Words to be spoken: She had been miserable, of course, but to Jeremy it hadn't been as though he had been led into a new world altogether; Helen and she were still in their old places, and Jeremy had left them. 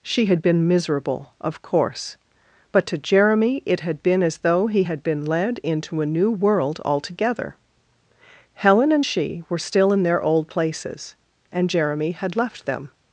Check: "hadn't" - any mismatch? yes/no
yes